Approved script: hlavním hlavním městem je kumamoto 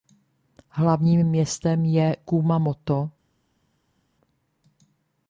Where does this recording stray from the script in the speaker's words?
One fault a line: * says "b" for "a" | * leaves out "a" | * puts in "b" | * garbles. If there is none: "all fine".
* leaves out "hlavním"